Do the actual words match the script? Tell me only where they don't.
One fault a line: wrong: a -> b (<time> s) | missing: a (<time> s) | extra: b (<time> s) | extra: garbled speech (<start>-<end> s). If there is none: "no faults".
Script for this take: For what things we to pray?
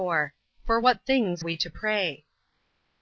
no faults